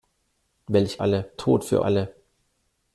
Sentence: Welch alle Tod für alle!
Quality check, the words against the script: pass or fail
pass